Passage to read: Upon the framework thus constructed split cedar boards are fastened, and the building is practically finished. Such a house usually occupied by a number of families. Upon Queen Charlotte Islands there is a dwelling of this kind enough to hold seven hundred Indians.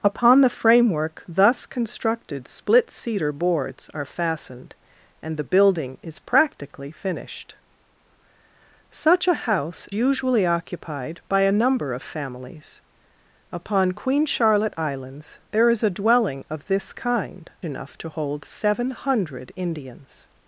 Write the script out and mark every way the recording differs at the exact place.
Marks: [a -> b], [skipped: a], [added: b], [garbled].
Upon the framework thus constructed split cedar boards are fastened, and the building is practically finished. Such a house usually occupied by a number of families. Upon Queen Charlotte Islands there is a dwelling of this kind enough to hold seven hundred Indians.